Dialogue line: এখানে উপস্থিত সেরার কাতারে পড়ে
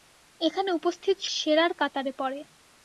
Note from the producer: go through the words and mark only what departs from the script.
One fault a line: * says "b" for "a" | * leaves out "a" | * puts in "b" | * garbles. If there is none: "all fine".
all fine